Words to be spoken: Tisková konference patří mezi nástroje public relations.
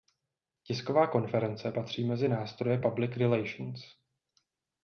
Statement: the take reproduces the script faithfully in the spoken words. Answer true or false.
true